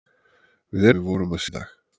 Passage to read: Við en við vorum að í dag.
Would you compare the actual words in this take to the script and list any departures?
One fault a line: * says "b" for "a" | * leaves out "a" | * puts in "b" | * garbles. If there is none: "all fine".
all fine